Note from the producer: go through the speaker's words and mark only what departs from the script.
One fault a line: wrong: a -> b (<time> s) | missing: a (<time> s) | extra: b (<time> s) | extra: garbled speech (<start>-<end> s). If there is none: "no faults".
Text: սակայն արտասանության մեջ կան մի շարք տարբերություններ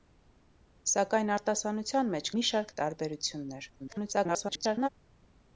missing: կան (2.3 s)
extra: garbled speech (3.8-4.9 s)